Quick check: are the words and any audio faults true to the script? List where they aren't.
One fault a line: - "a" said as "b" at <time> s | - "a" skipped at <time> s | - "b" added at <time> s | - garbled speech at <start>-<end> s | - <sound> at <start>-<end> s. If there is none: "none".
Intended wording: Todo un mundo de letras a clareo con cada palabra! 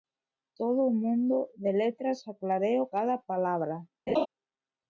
- "con" skipped at 2.9 s
- laugh at 4.1-4.3 s